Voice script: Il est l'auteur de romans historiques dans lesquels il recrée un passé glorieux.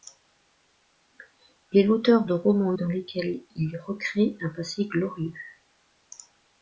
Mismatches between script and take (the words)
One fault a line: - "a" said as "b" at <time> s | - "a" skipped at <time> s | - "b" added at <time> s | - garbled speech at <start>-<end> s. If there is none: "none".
- "historiques" skipped at 2.7 s